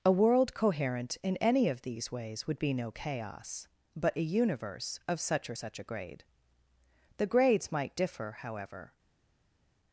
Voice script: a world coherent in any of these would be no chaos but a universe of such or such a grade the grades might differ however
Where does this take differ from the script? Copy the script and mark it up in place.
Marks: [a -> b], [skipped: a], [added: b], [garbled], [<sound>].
a world coherent in any of these [added: ways] would be no chaos but a universe of such or such a grade the grades might differ however